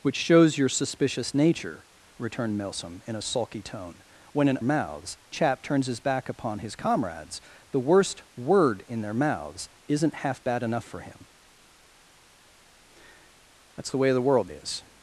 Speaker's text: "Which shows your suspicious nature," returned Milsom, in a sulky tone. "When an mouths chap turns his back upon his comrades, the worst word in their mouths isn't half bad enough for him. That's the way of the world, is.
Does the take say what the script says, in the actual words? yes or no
yes